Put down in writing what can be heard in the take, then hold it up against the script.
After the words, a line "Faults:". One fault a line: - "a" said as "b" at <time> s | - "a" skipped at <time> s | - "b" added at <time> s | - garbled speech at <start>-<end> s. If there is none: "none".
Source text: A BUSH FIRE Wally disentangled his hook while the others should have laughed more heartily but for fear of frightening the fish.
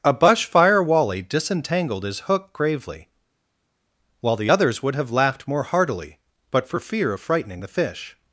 A BUSH FIRE Wally disentangled his hook gravely, while the others would have laughed more heartily but for fear of frightening the fish.
Faults:
- "gravely" added at 2.5 s
- "should" said as "would" at 4.8 s